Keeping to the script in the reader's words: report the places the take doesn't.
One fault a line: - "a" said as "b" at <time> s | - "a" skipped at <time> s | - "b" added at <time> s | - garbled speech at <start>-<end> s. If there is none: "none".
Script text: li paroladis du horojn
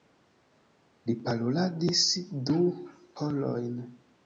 none